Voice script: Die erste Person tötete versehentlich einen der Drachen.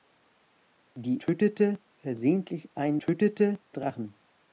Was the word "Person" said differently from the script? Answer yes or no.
yes